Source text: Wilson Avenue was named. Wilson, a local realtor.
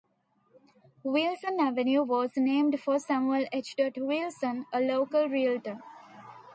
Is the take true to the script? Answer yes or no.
no